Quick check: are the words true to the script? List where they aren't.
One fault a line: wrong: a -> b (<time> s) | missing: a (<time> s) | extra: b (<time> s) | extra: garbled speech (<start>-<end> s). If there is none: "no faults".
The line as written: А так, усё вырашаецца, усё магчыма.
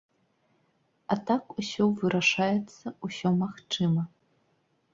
no faults